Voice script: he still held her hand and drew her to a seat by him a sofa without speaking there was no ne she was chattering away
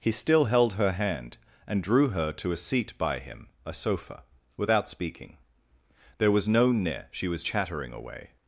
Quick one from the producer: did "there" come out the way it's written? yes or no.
yes